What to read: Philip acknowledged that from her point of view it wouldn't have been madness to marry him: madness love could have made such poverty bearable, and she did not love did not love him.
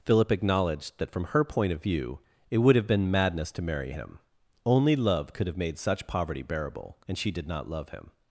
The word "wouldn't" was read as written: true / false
false